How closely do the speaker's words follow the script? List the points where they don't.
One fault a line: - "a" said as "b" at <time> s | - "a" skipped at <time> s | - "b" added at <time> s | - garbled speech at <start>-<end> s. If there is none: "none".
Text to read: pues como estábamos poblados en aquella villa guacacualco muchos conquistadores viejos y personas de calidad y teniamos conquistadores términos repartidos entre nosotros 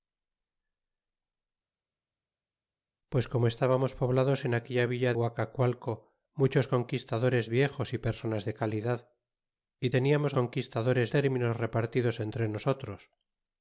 none